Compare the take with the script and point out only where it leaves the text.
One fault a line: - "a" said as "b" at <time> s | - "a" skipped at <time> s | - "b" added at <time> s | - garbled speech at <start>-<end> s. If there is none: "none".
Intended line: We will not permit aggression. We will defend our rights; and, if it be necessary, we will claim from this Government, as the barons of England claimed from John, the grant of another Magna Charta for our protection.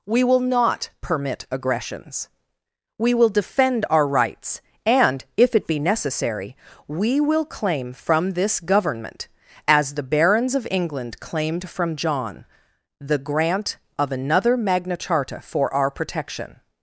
- "aggression" said as "aggressions" at 1.5 s